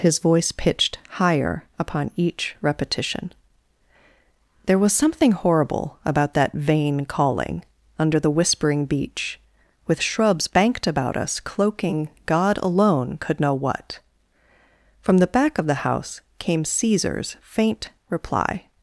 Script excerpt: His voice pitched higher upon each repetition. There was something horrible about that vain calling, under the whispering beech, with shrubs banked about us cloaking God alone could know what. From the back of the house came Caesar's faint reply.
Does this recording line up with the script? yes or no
yes